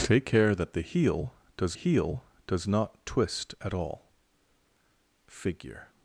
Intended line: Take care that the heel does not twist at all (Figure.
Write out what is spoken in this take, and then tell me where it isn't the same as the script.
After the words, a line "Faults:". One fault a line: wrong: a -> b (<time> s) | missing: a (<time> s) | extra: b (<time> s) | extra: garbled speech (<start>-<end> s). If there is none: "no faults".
Take care that the heel does heel does not twist at all (Figure.
Faults:
extra: heel does (1.7 s)